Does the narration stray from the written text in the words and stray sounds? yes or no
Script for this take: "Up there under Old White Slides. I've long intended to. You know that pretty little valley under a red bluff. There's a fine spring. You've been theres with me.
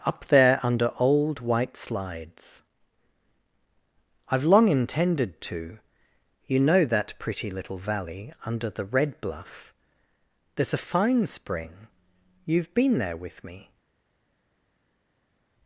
yes